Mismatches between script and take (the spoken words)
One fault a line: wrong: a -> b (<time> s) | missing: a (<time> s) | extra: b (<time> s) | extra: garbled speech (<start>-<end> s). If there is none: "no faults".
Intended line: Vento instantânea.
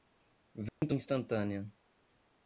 no faults